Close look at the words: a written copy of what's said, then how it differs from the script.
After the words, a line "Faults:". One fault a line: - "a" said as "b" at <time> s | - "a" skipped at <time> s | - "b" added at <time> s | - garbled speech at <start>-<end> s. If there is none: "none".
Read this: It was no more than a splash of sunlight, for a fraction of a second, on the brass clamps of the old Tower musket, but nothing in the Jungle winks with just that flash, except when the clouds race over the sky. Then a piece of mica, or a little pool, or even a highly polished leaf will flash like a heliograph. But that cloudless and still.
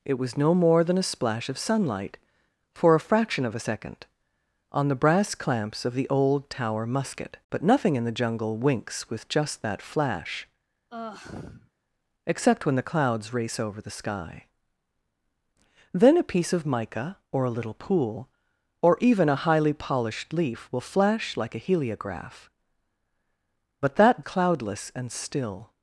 It was no more than a splash of sunlight, for a fraction of a second, on the brass clamps of the old Tower musket, but nothing in the Jungle winks with just that flash, except when the clouds race over the sky. Then a piece of mica, or a little pool, or even a highly polished leaf will flash like a heliograph. But that cloudless and still.
Faults:
none